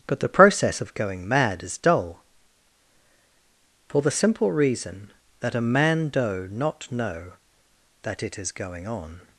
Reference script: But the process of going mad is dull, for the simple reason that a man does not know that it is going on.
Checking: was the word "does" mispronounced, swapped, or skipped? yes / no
yes